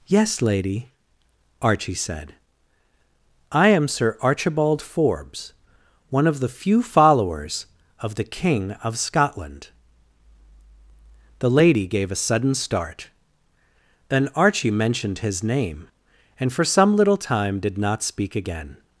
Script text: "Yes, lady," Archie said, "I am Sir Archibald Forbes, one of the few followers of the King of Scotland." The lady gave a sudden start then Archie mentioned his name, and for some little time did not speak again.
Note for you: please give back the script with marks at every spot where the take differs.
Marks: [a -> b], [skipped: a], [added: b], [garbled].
"Yes, lady," Archie said, "I am Sir Archibald Forbes, one of the few followers of the King of Scotland." The lady gave a sudden start then Archie mentioned his name, and for some little time did not speak again.